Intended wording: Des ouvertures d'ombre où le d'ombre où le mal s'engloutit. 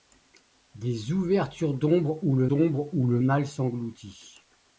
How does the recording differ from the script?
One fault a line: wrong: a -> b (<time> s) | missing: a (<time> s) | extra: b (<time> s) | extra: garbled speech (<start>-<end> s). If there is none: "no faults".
no faults